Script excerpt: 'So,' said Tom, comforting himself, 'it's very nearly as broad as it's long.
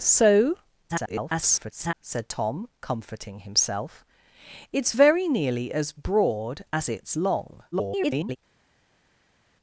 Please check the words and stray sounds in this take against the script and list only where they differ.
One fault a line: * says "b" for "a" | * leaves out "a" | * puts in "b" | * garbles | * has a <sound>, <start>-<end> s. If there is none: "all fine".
* garbles
* garbles